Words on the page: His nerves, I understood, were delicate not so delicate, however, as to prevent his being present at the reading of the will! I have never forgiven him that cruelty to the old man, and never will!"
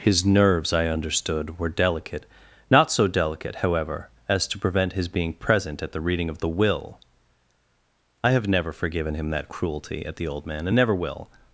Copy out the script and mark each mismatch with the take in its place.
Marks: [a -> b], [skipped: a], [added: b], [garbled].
His nerves, I understood, were delicate not so delicate, however, as to prevent his being present at the reading of the will! I have never forgiven him that cruelty [to -> at] the old man, and never will!"